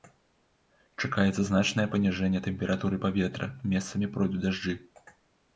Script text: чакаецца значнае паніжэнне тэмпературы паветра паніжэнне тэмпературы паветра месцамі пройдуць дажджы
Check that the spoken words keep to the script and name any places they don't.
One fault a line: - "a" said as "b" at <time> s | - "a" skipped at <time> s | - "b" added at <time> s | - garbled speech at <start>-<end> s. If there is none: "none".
- "паніжэнне тэмпературы паветра" skipped at 3.5 s